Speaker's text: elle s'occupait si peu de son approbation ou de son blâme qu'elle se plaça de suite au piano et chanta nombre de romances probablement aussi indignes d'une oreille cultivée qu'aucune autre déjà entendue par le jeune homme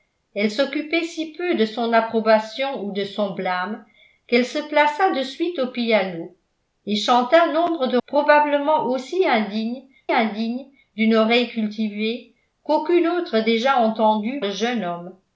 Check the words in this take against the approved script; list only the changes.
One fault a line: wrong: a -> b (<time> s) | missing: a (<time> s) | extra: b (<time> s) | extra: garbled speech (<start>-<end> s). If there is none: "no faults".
missing: romances (8.0 s)
extra: indignes (10.1 s)
missing: par (14.4 s)